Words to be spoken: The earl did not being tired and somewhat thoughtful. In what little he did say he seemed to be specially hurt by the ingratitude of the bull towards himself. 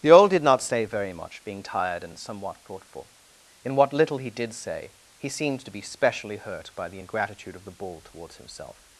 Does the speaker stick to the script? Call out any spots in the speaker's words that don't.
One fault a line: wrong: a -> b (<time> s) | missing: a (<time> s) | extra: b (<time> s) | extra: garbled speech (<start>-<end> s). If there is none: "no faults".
extra: say very much (0.6 s)